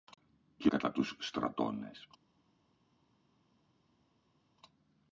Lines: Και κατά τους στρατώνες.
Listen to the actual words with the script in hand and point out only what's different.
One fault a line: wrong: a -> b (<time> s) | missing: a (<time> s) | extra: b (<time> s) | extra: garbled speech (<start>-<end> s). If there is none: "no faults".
no faults